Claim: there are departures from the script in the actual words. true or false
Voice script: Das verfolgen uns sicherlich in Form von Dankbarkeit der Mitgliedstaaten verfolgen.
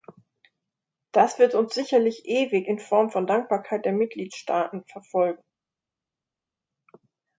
true